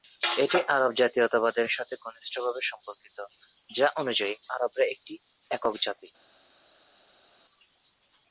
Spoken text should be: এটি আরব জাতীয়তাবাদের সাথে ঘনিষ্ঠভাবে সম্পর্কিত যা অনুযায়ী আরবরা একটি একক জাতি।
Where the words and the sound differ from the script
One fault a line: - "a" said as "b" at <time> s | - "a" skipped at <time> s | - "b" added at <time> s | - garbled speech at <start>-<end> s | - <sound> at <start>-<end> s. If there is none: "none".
none